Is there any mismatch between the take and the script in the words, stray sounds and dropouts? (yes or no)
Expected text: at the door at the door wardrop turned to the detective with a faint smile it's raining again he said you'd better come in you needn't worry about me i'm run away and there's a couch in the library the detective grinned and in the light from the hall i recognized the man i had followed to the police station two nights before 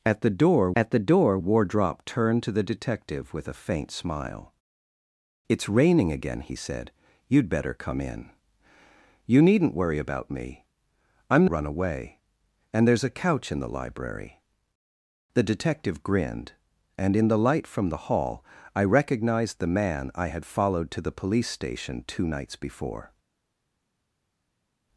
no